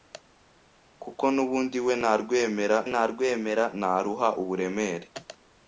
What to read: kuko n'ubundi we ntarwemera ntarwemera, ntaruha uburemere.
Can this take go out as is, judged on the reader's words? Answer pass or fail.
pass